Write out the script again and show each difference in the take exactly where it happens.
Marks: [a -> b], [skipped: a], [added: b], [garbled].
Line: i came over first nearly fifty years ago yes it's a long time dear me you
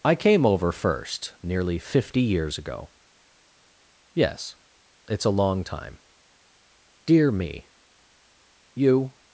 i came over first nearly fifty years ago yes it's a long time dear me you